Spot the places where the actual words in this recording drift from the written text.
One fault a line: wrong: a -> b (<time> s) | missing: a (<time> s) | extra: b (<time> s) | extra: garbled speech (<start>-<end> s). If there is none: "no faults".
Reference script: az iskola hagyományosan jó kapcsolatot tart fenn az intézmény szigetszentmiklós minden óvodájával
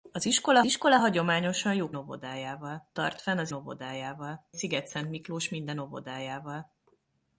extra: iskola (0.6 s)
wrong: kapcsolatot -> óvodájával (1.9 s)
wrong: intézmény -> óvodájával (3.5 s)